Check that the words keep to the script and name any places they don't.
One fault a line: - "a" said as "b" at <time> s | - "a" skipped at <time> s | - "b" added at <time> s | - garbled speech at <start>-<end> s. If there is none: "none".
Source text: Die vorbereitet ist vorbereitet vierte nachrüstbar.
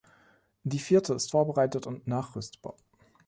- "vorbereitet" said as "vierte" at 0.8 s
- "vierte" said as "und" at 1.8 s